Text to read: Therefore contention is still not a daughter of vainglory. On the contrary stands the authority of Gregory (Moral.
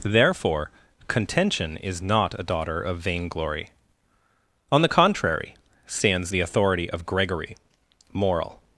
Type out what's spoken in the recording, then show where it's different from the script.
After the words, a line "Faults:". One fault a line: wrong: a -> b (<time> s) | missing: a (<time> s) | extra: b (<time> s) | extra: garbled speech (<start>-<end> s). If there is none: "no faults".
Therefore contention is not a daughter of vainglory. On the contrary stands the authority of Gregory (Moral.
Faults:
missing: still (2.0 s)